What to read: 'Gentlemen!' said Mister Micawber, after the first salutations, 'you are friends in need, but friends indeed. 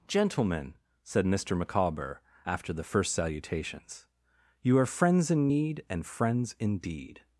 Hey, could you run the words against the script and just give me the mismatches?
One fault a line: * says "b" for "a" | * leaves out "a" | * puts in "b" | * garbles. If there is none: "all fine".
* says "and" for "but"